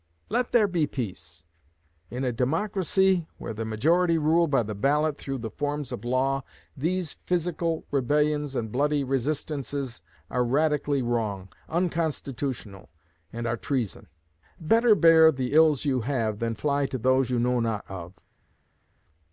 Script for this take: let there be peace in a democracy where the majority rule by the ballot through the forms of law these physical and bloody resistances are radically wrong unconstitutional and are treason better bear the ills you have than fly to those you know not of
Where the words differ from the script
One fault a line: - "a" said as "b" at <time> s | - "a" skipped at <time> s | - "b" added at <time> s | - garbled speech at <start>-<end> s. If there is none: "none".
- "rebellions" added at 7.9 s